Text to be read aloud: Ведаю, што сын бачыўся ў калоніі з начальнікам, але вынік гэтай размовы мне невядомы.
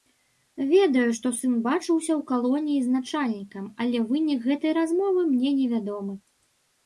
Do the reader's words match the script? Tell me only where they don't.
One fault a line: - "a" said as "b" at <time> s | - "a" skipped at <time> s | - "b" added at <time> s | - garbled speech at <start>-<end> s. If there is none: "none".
none